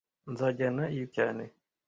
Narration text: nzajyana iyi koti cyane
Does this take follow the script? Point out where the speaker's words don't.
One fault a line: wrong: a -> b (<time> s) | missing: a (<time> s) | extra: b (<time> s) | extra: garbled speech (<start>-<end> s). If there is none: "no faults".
missing: koti (1.1 s)